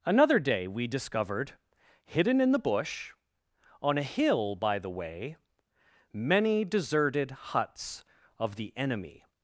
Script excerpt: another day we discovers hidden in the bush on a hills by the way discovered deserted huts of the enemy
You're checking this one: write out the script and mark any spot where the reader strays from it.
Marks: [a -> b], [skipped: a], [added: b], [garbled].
another day we [discovers -> discovered] hidden in the bush on a [hills -> hill] by the way [discovered -> many] deserted huts of the enemy